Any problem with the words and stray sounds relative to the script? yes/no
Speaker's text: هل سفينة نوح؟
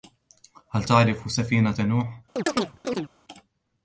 yes